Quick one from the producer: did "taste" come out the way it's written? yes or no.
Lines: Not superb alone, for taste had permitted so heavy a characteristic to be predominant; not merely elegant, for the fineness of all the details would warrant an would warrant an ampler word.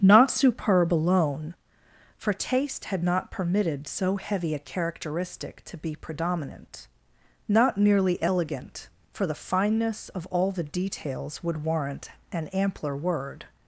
yes